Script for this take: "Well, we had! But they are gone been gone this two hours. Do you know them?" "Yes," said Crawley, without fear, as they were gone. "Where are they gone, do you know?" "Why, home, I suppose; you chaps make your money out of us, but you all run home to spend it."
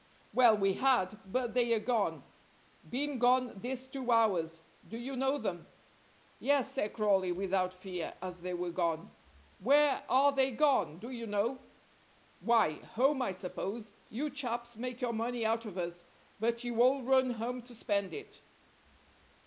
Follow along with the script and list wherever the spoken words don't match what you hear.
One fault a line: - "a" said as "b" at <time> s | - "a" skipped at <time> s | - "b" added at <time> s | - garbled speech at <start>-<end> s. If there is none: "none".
none